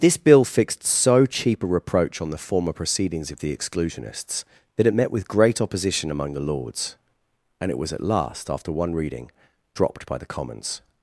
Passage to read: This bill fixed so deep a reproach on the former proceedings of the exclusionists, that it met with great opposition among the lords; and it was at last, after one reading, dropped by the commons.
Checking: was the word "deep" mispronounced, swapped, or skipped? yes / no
yes